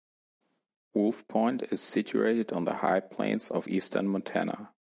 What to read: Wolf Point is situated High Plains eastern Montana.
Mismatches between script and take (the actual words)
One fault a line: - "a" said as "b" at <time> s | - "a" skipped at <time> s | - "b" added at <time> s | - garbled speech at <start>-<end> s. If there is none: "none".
- "on the" added at 2.5 s
- "of" added at 3.5 s